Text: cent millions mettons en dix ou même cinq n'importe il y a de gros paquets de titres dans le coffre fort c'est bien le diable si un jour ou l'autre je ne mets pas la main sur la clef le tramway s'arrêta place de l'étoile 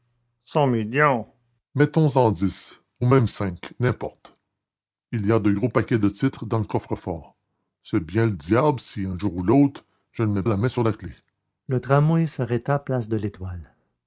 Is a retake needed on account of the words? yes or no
yes